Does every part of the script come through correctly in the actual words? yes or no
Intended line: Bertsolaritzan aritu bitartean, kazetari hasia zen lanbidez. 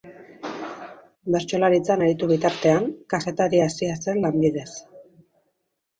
yes